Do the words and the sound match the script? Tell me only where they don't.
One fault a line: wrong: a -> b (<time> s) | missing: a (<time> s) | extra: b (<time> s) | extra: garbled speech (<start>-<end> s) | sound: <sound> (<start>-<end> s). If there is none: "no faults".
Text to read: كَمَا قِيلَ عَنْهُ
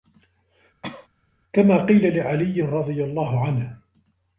sound: cough (0.8-1.1 s)
extra: لِعَلِيٍّ رَضِيَ اللَّهُ (2.2 s)